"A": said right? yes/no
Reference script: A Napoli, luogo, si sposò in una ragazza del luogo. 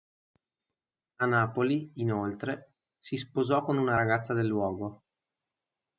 yes